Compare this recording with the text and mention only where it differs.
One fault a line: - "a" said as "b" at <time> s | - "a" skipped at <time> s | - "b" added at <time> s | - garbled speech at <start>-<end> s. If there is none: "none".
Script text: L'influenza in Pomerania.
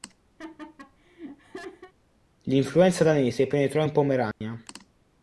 - "danese penetrò" added at 3.0 s